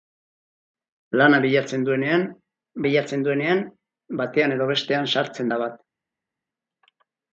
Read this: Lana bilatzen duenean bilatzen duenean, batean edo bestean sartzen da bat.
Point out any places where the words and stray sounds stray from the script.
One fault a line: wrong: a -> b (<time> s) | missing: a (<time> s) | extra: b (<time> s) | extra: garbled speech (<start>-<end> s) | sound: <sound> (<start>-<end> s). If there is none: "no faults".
no faults